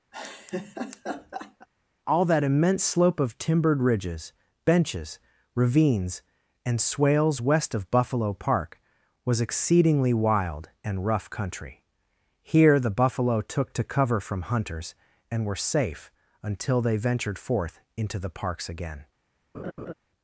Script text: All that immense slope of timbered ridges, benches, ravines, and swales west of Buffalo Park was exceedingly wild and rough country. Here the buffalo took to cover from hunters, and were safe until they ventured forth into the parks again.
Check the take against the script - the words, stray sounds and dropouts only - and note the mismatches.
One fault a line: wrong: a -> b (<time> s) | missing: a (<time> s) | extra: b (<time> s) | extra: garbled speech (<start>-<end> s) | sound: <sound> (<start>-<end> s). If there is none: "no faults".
sound: laugh (0.1-1.7 s)
sound: laugh (19.5-19.9 s)